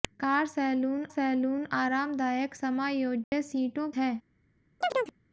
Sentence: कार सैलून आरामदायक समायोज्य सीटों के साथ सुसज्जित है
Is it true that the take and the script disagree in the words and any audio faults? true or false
true